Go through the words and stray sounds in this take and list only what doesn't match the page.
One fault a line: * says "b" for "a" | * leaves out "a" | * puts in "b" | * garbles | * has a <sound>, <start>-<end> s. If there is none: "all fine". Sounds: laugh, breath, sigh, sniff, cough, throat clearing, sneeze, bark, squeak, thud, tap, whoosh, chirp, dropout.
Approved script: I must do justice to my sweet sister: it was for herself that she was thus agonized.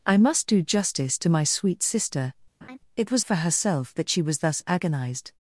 * has a laugh, 2.6-2.8 s